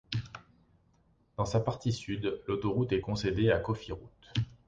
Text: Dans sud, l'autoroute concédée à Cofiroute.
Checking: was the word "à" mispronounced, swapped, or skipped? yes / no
no